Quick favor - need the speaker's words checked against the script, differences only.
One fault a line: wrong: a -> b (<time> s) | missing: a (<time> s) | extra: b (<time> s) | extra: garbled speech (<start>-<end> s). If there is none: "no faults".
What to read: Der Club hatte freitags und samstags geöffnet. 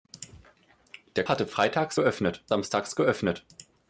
missing: Club (1.3 s)
wrong: und -> geöffnet (1.9 s)